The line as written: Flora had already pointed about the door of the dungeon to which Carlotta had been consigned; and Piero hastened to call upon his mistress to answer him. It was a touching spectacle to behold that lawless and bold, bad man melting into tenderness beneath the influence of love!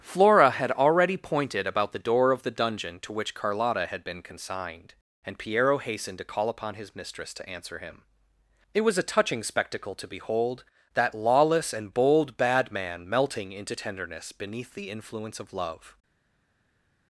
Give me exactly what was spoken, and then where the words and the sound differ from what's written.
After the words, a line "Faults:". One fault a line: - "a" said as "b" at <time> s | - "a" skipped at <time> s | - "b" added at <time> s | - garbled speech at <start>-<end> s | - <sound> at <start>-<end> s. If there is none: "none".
Flora had already pointed about the door of the dungeon to which Carlotta had been consigned; and Piero hastened to call upon his mistress to answer him. It was a touching spectacle to behold that lawless and bold, bad man melting into tenderness beneath the influence of love!
Faults:
none